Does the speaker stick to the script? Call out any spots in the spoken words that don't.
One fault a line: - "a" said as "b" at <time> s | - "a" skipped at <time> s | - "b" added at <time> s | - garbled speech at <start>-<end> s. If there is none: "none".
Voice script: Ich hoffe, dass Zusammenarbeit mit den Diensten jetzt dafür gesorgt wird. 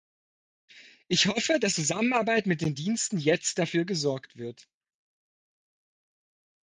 none